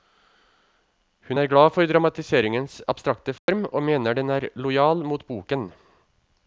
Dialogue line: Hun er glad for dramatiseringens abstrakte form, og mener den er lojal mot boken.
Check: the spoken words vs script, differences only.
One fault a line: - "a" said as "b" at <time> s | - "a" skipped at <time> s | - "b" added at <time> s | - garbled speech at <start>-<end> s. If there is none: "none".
none